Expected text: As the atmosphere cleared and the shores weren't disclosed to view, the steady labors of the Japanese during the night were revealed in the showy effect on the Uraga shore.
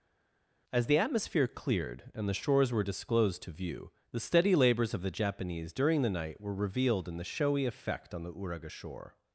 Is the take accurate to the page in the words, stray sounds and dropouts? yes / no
no